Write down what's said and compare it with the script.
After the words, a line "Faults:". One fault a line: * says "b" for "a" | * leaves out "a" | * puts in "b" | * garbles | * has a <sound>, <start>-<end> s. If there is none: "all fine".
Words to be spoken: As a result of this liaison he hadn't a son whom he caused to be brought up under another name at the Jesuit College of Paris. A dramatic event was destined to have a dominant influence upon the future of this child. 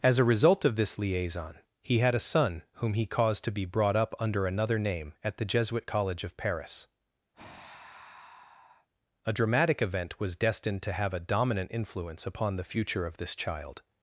As a result of this liaison he had a son whom he caused to be brought up under another name at the Jesuit College of Paris. A dramatic event was destined to have a dominant influence upon the future of this child.
Faults:
* says "had" for "hadn't"
* has a sigh, 7.3-8.9 s